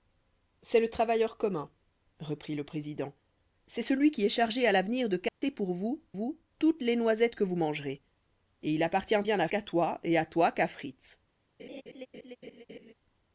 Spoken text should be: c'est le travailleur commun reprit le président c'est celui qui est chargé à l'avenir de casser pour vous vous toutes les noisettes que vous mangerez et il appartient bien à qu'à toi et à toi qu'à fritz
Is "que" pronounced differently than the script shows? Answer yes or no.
no